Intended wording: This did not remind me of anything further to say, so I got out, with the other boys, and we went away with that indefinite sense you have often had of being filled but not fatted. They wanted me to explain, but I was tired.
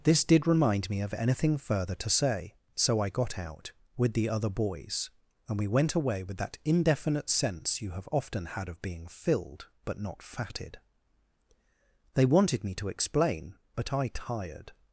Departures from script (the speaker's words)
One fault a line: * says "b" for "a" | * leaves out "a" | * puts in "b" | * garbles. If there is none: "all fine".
* leaves out "not"
* leaves out "was"